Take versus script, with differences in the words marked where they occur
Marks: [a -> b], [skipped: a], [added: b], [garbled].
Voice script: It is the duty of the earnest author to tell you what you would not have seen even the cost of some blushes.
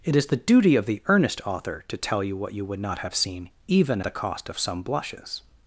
It is the duty of the earnest author to tell you what you would not have seen even the cost of some blushes.